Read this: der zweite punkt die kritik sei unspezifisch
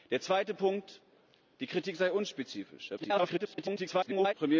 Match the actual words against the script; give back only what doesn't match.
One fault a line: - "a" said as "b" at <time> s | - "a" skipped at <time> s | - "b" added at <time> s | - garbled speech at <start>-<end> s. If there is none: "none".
- garbled speech at 3.0-4.3 s